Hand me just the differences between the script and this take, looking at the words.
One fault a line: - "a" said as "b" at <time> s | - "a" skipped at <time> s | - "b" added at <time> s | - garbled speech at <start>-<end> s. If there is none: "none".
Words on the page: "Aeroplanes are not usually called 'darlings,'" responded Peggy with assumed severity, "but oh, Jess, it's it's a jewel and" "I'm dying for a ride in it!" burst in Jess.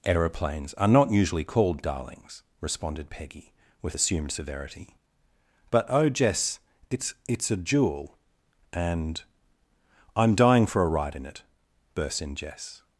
none